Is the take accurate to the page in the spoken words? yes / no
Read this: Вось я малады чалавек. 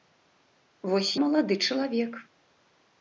no